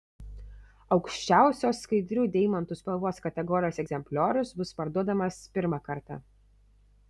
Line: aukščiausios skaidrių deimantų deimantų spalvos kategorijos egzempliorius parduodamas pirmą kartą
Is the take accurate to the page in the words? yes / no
no